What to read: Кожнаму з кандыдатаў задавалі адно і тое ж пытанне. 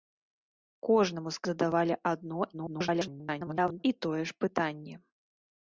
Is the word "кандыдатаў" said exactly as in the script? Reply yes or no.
no